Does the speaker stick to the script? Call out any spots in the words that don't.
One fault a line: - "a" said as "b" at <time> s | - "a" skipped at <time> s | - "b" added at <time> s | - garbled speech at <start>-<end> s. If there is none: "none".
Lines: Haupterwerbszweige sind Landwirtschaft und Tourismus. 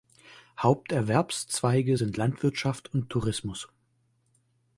none